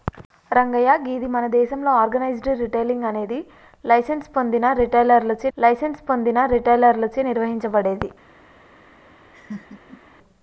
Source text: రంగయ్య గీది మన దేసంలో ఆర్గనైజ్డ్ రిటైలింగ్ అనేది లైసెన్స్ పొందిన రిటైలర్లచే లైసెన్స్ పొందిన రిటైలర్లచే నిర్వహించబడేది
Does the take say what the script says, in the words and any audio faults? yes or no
no